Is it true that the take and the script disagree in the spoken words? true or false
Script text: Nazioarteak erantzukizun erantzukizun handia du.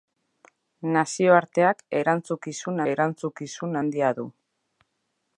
false